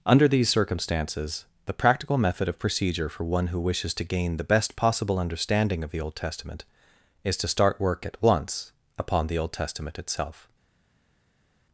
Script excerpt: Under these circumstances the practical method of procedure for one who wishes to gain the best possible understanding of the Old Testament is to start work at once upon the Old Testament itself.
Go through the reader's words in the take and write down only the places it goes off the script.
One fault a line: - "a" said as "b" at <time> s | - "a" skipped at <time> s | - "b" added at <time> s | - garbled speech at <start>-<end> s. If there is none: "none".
none